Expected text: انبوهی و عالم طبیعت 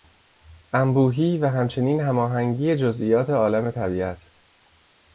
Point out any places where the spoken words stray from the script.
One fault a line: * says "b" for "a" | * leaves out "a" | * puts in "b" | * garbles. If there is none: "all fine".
* puts in "همچنین هماهنگی جزئیات"